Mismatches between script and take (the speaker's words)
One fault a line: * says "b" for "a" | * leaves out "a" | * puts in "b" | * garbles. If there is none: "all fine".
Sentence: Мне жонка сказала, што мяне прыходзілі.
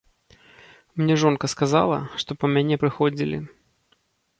* puts in "па"